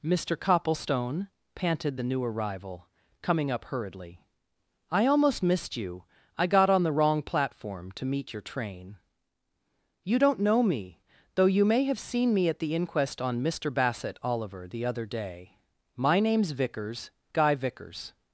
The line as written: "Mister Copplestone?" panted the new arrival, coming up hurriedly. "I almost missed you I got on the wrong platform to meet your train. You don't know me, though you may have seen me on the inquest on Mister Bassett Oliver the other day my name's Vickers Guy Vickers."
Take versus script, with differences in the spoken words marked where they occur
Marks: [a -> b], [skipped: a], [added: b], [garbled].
"Mister Copplestone?" panted the new arrival, coming up hurriedly. "I almost missed you I got on the wrong platform to meet your train. You don't know me, though you may have seen me [on -> at] the inquest on Mister Bassett Oliver the other day my name's Vickers Guy Vickers."